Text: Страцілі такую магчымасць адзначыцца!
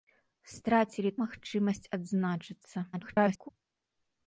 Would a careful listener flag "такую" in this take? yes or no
yes